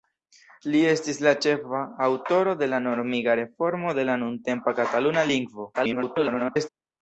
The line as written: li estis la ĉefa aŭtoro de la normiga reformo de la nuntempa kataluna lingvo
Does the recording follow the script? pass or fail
fail